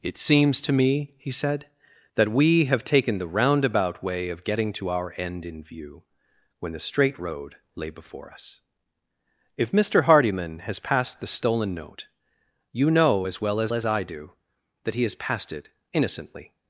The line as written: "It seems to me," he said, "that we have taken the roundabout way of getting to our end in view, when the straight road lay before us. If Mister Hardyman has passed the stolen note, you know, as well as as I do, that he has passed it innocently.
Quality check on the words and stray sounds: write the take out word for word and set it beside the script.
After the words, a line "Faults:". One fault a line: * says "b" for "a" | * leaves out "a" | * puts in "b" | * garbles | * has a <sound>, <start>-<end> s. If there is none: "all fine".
"It seems to me," he said, "that we have taken the roundabout way of getting to our end in view, when the straight road lay before us. If Mister Hardyman has passed the stolen note, you know, as well as as I do, that he has passed it innocently.
Faults:
all fine